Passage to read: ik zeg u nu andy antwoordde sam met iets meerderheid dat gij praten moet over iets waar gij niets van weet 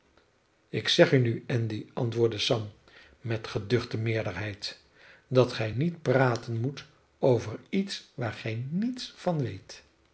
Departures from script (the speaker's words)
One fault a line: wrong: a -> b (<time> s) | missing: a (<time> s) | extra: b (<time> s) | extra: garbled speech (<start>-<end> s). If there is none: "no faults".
wrong: iets -> geduchte (3.5 s)
extra: niet (5.7 s)